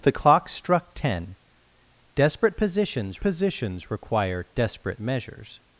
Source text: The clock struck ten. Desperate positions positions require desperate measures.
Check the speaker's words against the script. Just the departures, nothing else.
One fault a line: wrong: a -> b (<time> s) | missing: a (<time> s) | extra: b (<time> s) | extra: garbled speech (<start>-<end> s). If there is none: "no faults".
no faults